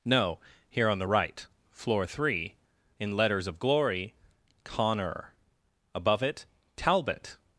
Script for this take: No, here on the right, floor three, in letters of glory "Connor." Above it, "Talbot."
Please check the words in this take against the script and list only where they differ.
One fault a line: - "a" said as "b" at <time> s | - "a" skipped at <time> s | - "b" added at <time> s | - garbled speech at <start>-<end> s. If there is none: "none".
none